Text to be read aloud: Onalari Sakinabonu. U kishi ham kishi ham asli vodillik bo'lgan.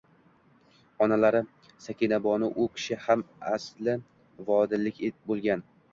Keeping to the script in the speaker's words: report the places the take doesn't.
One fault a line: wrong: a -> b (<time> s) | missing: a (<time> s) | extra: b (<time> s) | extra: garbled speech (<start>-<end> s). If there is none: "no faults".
missing: kishi ham (3.2 s)